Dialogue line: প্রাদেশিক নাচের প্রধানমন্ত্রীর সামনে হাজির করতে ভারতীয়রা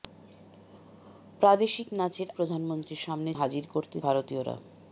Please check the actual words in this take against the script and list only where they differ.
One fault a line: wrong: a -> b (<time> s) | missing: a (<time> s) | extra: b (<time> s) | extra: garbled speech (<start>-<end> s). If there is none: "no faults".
no faults